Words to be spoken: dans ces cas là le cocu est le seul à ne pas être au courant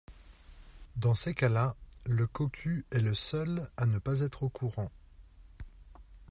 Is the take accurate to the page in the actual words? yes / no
yes